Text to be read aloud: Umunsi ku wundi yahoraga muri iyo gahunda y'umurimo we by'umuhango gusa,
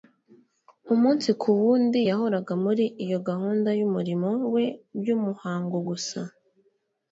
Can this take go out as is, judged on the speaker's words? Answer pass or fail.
pass